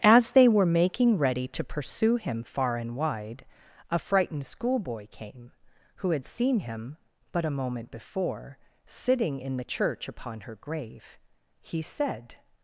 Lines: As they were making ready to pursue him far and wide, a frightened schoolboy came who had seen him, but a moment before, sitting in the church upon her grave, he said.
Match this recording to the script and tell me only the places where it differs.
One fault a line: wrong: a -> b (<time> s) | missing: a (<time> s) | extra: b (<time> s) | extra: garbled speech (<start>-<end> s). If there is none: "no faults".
no faults